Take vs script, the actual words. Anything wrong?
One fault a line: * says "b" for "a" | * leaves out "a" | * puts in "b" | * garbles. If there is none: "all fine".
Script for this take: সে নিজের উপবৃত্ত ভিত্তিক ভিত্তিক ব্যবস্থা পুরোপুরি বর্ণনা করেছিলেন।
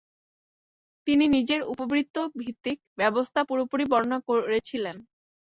* says "তিনি" for "সে"
* leaves out "ভিত্তিক"